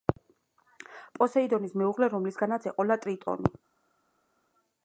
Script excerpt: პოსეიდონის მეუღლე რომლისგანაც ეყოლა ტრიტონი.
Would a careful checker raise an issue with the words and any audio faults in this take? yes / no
no